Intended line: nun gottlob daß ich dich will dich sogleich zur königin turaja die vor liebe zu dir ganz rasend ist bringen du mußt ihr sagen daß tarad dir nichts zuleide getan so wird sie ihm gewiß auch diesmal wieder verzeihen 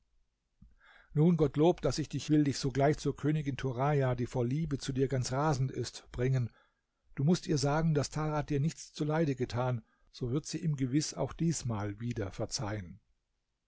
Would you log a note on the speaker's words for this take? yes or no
no